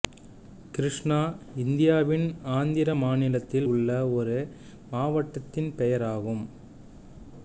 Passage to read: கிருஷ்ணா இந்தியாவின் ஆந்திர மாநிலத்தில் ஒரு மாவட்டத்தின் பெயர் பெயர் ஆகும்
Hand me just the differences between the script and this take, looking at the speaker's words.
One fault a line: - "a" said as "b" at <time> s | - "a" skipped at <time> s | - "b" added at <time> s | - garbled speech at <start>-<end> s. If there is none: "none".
- "உள்ள" added at 3.6 s
- "பெயர்" skipped at 6.1 s